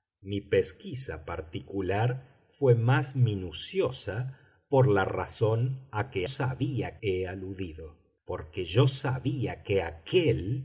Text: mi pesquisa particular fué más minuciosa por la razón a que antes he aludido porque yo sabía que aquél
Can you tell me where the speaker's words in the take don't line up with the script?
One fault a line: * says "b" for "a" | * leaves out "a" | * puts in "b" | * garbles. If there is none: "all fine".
* says "sabía" for "antes"